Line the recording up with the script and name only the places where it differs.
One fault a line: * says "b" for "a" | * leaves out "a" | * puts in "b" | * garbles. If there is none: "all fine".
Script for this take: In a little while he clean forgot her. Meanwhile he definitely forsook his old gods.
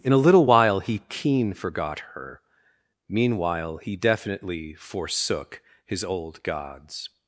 * says "keen" for "clean"